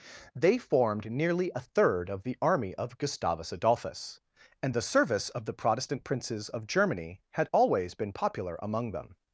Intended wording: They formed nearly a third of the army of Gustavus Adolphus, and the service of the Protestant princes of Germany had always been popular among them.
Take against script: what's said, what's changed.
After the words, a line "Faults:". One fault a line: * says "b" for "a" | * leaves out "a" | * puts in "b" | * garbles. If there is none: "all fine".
They formed nearly a third of the army of Gustavus Adolphus, and the service of the Protestant princes of Germany had always been popular among them.
Faults:
all fine